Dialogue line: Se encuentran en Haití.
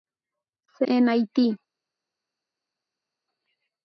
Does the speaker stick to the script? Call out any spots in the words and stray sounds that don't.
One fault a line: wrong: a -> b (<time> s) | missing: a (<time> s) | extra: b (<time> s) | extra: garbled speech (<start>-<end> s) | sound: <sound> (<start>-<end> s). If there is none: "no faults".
missing: encuentran (0.9 s)